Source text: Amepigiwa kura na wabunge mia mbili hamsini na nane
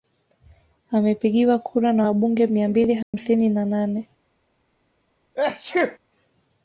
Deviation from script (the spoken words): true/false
false